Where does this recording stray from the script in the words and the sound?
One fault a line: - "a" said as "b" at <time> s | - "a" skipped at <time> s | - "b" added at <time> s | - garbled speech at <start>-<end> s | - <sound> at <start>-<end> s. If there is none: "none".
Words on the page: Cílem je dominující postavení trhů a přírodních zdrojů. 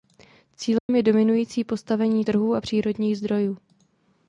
- dropout at 0.8-0.9 s